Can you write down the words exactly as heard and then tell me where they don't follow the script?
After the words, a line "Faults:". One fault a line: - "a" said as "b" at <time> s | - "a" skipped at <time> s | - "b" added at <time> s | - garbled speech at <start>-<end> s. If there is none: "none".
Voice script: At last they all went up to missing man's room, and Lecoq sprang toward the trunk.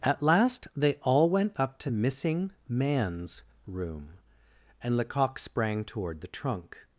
At last they all went up to missing man's room, and Lecoq sprang toward the trunk.
Faults:
none